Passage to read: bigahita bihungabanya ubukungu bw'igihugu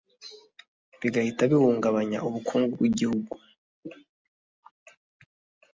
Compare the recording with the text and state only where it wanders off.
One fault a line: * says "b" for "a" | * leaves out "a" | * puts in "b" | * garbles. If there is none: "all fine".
all fine